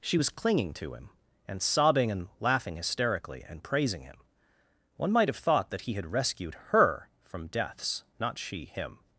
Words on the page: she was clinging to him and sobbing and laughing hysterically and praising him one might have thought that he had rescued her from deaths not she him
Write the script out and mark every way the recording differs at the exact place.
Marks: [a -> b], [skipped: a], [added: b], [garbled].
she was clinging to him and sobbing and laughing hysterically and praising him one might have thought that he had rescued her from deaths not she him